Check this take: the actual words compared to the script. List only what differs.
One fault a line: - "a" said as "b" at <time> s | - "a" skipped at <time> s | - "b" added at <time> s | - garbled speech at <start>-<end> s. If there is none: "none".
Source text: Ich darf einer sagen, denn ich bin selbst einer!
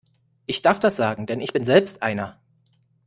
- "einer" said as "das" at 0.8 s